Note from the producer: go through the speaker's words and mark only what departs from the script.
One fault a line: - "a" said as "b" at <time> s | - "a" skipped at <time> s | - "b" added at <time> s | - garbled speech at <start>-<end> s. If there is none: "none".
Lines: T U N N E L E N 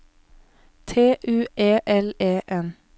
- "N N" skipped at 1.4 s